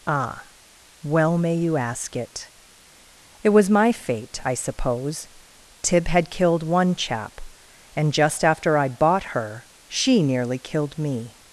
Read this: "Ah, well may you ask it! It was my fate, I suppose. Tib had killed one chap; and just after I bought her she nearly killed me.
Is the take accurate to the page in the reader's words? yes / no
yes